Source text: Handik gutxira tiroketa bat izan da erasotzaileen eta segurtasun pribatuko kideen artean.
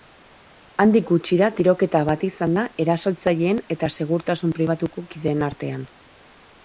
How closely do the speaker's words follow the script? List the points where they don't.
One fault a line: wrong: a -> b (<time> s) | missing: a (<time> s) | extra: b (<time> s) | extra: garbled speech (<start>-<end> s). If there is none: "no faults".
no faults